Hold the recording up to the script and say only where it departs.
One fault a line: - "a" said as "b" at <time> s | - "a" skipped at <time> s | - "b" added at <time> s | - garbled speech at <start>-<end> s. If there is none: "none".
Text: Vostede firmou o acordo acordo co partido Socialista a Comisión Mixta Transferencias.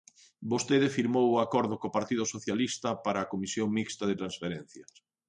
- "acordo" skipped at 1.8 s
- "para" added at 3.0 s
- "de" added at 4.1 s